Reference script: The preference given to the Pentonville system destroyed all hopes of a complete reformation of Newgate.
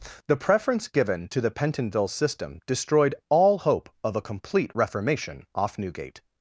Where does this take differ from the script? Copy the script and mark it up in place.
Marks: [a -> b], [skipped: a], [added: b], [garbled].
The preference given to the Pentonville system destroyed all [hopes -> hope] of a complete reformation [of -> off] Newgate.